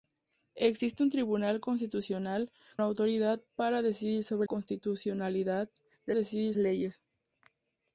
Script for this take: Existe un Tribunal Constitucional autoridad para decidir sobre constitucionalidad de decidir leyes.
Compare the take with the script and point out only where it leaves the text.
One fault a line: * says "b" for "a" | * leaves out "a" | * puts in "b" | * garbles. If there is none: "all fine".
all fine